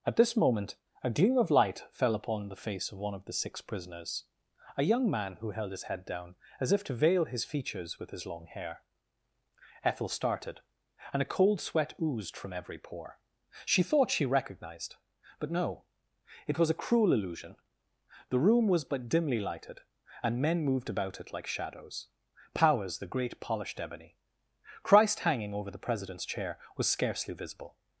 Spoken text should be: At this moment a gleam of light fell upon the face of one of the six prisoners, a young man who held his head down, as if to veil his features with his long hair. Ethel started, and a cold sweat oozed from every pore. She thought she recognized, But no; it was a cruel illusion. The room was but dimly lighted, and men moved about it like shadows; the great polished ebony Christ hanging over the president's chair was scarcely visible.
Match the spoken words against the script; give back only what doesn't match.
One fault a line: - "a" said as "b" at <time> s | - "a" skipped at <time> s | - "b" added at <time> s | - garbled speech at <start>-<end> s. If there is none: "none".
- "powers" added at 22.5 s